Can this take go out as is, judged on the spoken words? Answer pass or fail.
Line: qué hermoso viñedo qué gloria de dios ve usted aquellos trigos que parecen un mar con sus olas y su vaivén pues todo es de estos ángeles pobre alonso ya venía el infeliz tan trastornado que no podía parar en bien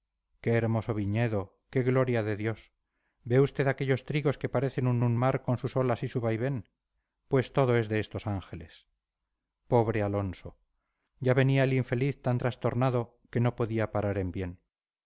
fail